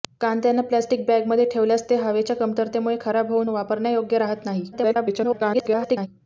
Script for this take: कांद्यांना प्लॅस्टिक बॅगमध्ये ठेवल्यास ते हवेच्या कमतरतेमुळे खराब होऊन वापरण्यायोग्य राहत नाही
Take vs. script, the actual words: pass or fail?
fail